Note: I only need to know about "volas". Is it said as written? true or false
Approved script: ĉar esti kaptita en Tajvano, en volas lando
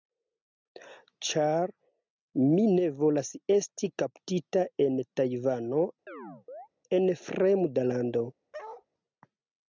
false